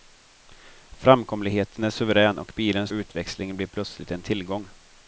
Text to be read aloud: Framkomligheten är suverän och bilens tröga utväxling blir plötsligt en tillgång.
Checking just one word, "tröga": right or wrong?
wrong